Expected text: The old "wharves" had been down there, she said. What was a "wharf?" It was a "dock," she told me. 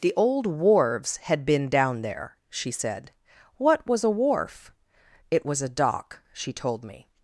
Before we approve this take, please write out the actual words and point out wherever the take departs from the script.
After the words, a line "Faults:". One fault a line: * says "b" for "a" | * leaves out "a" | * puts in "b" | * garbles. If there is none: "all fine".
The old "wharves" had been down there, she said. What was a "wharf?" It was a "dock," she told me.
Faults:
all fine